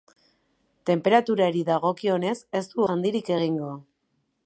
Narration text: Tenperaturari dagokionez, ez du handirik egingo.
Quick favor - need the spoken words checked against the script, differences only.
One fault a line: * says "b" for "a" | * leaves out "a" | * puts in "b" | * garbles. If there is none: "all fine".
all fine